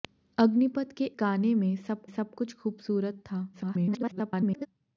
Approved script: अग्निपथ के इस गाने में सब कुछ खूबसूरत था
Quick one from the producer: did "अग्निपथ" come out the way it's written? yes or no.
yes